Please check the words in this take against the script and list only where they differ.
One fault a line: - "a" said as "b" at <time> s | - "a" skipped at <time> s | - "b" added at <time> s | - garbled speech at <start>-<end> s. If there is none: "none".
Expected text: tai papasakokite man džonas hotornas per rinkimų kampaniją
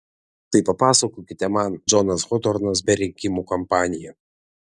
none